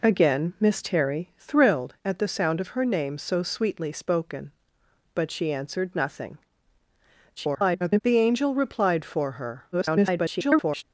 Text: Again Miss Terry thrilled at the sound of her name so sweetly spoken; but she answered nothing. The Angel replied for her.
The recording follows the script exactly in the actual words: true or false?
false